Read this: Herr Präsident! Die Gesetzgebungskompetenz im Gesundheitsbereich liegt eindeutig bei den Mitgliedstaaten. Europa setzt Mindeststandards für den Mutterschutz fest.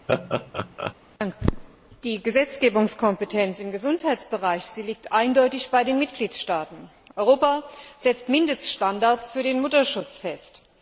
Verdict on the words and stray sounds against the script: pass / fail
fail